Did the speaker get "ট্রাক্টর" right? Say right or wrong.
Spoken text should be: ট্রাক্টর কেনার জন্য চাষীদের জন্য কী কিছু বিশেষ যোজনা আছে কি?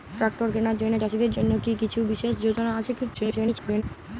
right